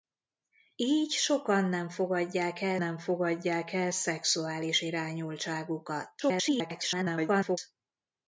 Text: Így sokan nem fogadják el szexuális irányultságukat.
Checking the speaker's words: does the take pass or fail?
fail